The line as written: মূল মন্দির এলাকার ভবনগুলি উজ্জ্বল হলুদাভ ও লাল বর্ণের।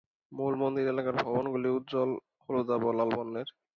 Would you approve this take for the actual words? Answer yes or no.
yes